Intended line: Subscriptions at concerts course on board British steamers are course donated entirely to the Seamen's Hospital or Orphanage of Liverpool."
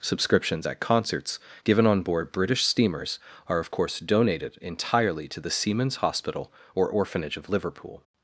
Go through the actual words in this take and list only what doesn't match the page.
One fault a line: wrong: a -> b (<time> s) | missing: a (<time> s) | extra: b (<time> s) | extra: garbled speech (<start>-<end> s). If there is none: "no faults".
wrong: course -> given (1.6 s)
extra: of (3.6 s)